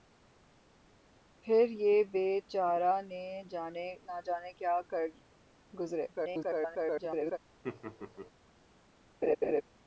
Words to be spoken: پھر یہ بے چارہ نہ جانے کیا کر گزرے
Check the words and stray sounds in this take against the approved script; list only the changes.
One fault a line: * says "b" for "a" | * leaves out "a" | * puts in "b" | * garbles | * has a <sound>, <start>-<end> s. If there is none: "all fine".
* garbles
* has a laugh, 7.6-8.3 s
* has a laugh, 9.2-9.6 s